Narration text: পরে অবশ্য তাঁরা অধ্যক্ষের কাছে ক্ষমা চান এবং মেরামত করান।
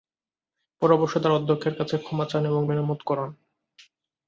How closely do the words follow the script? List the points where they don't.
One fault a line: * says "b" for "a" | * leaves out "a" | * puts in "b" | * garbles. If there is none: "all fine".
all fine